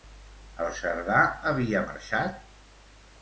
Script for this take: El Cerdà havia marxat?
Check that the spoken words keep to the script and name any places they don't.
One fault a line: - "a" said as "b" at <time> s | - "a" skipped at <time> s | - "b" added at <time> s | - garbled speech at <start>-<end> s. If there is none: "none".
none